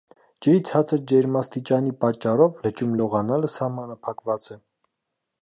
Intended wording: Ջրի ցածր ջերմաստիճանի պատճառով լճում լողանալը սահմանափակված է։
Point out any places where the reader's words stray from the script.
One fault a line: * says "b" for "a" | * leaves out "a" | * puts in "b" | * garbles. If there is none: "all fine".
all fine